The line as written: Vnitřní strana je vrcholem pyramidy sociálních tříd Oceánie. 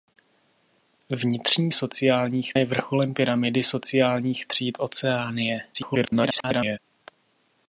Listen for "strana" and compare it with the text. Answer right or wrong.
wrong